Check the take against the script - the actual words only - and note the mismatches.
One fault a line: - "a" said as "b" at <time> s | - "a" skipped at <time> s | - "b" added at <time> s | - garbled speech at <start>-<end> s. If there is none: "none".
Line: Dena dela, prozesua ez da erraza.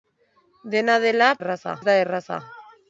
- "prozesua" said as "erraza" at 1.4 s